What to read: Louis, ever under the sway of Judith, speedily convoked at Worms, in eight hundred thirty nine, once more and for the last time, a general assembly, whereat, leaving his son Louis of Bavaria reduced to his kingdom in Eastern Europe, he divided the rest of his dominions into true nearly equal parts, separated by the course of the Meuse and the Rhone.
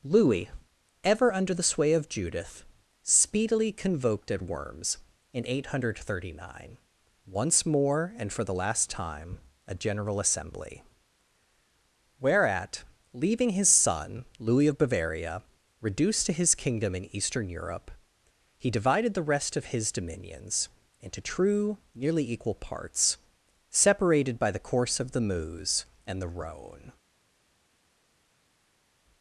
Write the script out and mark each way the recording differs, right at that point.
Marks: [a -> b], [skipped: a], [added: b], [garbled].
Louis, ever under the sway of Judith, speedily convoked at Worms, in eight hundred thirty nine, once more and for the last time, a general assembly, whereat, leaving his son Louis of Bavaria reduced to his kingdom in Eastern Europe, he divided the rest of his dominions into true nearly equal parts, separated by the course of the Meuse and the Rhone.